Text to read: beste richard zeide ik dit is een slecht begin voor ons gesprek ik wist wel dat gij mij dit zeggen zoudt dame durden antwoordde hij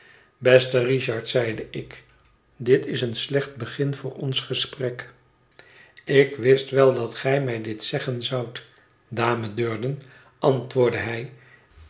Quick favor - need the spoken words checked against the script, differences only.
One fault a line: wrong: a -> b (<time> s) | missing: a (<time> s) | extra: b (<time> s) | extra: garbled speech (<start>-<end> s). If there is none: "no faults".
no faults